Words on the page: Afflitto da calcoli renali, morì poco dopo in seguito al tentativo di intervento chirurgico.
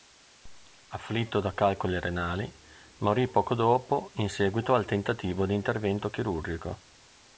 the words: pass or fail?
pass